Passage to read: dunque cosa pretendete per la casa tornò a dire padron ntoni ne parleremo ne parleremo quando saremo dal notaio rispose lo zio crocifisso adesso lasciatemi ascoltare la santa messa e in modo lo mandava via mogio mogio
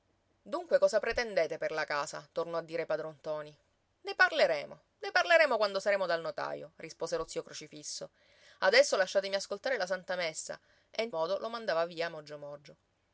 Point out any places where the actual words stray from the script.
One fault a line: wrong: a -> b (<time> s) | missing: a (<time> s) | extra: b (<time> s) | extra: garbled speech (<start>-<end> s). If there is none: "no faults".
no faults